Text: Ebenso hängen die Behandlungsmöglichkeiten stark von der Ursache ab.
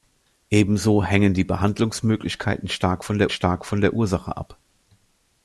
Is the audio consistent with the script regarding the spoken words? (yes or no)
no